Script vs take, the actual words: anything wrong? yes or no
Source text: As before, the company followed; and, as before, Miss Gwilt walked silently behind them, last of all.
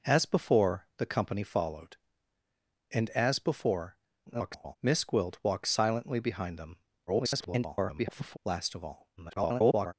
yes